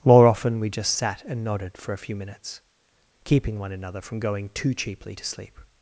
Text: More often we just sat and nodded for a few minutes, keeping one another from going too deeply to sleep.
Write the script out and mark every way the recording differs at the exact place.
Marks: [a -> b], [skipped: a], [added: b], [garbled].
More often we just sat and nodded for a few minutes, keeping one another from going too [deeply -> cheaply] to sleep.